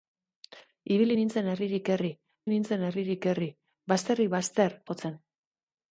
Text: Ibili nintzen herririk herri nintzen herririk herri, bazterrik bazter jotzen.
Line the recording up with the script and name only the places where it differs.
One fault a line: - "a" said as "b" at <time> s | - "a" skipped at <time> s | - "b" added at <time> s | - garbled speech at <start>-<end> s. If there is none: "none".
none